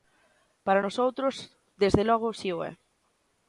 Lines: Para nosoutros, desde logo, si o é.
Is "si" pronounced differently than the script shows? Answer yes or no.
no